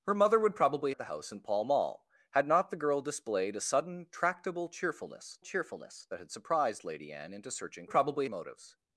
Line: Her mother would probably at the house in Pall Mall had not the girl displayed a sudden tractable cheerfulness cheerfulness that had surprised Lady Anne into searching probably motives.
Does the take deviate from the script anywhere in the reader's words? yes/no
no